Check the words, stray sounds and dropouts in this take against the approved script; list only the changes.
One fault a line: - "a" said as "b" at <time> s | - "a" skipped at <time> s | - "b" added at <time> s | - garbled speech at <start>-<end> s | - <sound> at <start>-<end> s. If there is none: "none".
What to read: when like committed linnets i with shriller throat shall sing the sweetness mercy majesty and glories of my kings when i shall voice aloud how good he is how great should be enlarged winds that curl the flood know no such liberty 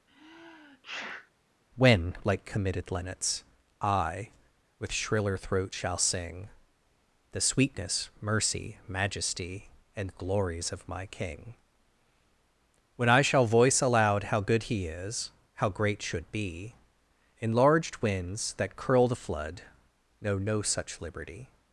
- sneeze at 0.1-1.3 s
- "kings" said as "king" at 11.0 s